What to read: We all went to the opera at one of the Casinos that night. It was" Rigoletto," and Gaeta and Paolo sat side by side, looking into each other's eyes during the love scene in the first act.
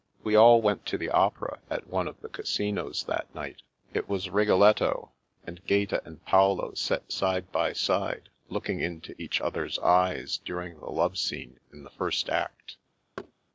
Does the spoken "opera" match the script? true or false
true